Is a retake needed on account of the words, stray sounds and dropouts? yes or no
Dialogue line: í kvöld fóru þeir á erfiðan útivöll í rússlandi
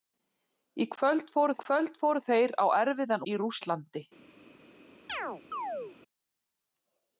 yes